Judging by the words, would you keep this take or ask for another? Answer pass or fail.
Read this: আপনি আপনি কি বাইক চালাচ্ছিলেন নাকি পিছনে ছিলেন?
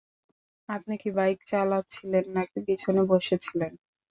fail